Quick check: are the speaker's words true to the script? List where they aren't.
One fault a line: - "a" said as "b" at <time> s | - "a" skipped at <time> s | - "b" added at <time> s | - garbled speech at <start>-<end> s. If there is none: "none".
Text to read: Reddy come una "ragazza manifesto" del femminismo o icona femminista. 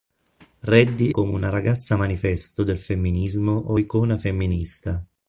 none